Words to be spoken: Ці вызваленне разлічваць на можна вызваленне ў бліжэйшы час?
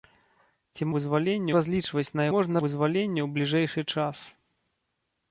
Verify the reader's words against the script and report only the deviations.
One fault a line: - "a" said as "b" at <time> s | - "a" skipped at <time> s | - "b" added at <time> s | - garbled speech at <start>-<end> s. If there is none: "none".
none